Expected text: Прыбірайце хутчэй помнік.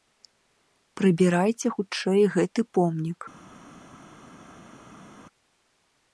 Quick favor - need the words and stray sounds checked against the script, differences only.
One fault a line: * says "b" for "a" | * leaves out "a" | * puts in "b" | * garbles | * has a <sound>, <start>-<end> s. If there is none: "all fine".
* puts in "гэты"